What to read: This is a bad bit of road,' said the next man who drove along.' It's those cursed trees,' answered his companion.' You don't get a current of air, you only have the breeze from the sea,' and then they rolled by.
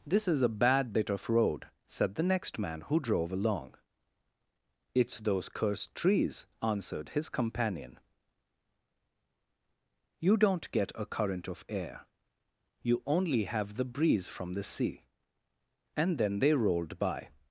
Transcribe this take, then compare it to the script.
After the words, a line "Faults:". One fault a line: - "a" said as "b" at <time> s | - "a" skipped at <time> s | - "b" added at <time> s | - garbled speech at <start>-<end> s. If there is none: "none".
This is a bad bit of road,' said the next man who drove along.' It's those cursed trees,' answered his companion.' You don't get a current of air, you only have the breeze from the sea,' and then they rolled by.
Faults:
none